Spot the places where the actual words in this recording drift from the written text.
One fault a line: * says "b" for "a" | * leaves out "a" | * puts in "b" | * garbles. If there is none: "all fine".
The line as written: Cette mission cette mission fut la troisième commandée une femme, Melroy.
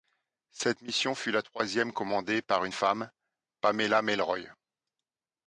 * leaves out "cette mission"
* puts in "par"
* puts in "Pamela"